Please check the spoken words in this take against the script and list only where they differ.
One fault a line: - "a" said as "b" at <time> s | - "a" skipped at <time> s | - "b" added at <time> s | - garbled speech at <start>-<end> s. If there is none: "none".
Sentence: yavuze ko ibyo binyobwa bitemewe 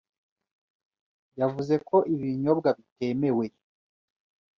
- "ibyo" said as "ibi" at 2.1 s